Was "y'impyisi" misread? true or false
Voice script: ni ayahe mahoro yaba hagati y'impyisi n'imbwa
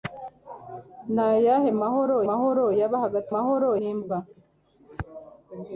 true